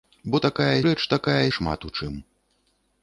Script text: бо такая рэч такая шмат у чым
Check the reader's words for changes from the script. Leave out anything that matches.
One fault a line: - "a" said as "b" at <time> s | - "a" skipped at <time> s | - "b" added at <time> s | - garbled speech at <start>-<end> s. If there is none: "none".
none